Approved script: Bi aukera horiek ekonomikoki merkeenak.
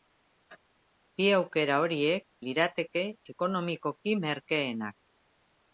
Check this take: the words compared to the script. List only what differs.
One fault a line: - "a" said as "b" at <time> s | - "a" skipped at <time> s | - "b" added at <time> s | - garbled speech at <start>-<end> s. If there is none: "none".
- "lirateke" added at 2.5 s